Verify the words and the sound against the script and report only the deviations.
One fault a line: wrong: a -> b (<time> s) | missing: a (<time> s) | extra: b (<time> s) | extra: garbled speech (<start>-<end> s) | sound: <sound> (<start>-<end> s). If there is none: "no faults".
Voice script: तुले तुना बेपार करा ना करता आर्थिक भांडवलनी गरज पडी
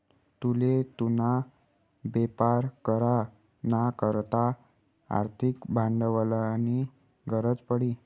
no faults